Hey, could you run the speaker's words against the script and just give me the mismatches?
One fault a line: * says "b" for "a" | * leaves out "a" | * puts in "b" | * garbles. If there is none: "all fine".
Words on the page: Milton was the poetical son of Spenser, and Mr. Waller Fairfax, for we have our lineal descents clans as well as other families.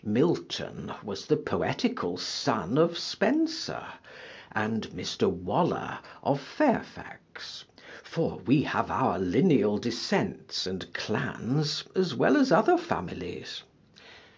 * puts in "of"
* puts in "and"